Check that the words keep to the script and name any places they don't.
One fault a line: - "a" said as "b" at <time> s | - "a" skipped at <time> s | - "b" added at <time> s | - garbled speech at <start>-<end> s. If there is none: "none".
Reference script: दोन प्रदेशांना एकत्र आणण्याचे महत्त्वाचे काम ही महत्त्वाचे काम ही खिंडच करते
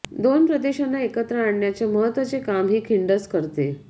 - "महत्त्वाचे काम ही" skipped at 2.8 s